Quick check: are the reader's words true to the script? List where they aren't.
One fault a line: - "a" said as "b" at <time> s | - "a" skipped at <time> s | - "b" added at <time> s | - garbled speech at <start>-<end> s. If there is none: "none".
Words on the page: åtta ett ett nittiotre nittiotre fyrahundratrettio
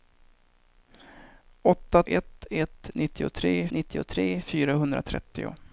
none